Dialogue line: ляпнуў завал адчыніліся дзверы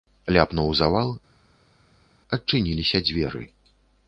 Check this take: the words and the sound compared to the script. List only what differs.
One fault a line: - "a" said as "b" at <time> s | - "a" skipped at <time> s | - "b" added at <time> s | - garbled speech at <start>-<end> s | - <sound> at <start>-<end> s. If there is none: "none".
none